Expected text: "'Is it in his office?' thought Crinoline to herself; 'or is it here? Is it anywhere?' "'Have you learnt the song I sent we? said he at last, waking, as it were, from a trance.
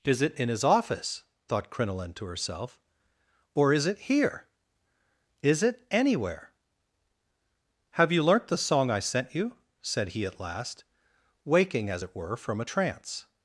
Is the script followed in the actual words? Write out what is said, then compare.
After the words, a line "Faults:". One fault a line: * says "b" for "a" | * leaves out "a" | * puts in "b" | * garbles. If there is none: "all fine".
"'Is it in his office?' thought Crinoline to herself; 'or is it here? Is it anywhere?' "'Have you learnt the song I sent you? said he at last, waking, as it were, from a trance.
Faults:
* says "you" for "we"